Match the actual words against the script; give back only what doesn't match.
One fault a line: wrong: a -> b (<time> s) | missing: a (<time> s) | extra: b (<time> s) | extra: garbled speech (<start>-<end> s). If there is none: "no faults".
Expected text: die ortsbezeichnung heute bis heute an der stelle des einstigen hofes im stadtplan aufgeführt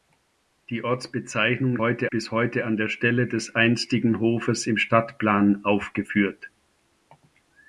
no faults